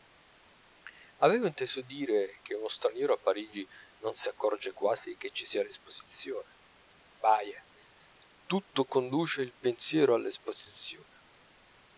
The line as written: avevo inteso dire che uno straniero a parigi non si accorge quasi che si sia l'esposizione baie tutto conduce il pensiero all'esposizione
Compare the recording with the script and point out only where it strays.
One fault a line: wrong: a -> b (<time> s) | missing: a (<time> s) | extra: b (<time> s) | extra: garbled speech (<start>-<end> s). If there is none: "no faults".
wrong: si -> ci (5.3 s)